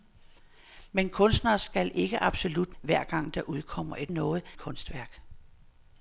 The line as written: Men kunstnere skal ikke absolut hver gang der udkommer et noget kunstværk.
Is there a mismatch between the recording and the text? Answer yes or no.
no